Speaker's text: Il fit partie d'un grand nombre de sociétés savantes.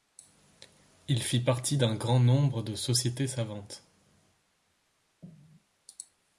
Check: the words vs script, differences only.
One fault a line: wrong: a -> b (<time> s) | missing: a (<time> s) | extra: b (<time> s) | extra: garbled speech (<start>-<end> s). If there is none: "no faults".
no faults